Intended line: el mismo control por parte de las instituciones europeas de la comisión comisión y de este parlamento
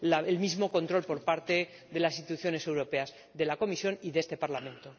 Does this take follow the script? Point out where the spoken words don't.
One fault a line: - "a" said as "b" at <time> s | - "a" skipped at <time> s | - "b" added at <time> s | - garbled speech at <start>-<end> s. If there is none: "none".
- "comisión" skipped at 4.0 s